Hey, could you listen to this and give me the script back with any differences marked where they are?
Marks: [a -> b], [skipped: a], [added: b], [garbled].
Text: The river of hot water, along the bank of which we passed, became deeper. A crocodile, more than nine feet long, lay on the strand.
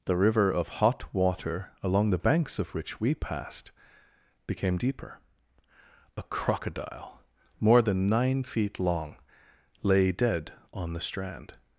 The river of hot water, along the [bank -> banks] of which we passed, became deeper. A crocodile, more than nine feet long, lay [added: dead] on the strand.